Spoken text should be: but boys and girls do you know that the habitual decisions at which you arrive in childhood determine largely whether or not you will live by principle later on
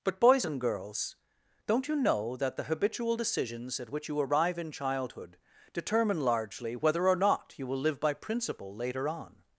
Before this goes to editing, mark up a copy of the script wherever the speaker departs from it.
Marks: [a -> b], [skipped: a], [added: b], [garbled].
but boys and girls [do -> don't] you know that the habitual decisions at which you arrive in childhood determine largely whether or not you will live by principle later on